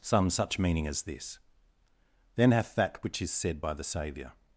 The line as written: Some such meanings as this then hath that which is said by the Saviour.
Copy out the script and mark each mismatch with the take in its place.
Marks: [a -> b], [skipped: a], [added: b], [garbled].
Some such [meanings -> meaning] as this then hath that which is said by the Saviour.